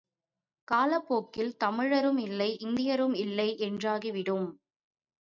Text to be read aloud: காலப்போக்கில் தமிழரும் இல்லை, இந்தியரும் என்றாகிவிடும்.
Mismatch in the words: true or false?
true